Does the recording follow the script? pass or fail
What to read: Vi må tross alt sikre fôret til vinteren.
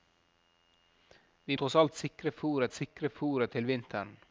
fail